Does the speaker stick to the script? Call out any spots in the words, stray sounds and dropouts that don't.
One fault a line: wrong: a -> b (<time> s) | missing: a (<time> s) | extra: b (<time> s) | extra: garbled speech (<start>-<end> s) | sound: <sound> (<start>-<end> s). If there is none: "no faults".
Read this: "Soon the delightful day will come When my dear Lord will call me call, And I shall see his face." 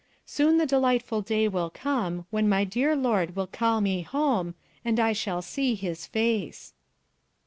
wrong: call -> home (4.0 s)